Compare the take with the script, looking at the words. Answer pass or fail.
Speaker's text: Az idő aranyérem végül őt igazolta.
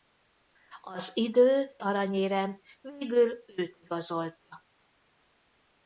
pass